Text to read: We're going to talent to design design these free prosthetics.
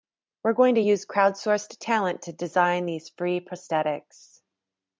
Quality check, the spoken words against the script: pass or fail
fail